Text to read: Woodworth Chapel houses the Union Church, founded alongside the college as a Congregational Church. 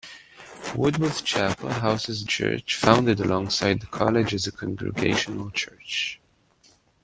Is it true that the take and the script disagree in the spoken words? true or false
true